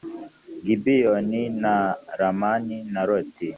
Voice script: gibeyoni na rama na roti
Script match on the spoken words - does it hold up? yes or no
yes